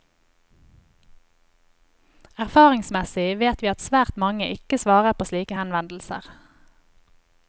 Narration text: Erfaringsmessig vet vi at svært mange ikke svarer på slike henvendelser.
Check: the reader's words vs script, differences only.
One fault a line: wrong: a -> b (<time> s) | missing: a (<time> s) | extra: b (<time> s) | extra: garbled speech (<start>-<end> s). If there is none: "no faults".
no faults